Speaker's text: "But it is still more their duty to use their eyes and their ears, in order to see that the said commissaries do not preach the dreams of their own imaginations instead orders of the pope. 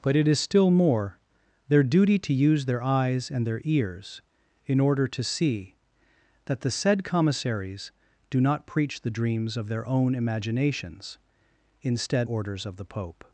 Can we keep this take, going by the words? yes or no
yes